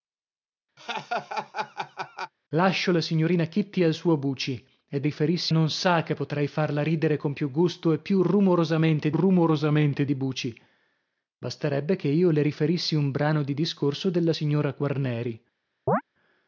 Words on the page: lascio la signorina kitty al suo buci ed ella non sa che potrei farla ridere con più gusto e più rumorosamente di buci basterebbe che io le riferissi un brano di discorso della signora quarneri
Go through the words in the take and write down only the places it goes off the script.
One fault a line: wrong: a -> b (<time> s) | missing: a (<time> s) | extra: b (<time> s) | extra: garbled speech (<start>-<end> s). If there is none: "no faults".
wrong: ella -> riferissi (5.0 s)
extra: rumorosamente (9.1 s)